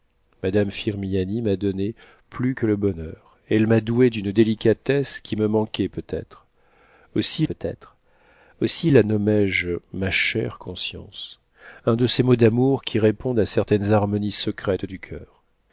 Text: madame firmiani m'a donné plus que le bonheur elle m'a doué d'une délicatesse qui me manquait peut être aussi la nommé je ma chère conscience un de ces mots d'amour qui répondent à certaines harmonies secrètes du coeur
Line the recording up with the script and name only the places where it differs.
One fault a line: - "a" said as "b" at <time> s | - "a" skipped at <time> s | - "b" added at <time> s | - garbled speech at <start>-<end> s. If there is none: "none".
- "peut être aussi" added at 7.4 s